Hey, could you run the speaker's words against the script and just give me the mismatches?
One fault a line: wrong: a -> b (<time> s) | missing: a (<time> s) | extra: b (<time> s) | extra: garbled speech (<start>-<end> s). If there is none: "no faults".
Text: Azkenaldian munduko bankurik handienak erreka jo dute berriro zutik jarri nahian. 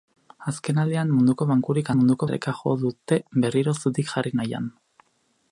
wrong: handienak -> munduko (2.0 s)